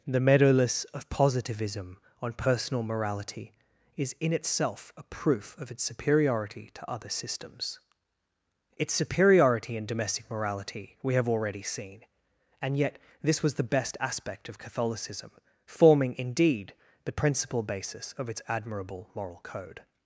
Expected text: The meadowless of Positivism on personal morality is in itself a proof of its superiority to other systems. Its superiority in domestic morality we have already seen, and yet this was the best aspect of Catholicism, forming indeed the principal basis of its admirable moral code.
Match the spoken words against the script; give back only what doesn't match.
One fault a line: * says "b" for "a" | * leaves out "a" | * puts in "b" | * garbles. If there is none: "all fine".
all fine